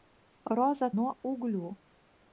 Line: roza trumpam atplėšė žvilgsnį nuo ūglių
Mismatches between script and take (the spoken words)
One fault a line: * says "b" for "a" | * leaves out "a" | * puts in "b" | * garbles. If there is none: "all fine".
* leaves out "trumpam atplėšė žvilgsnį"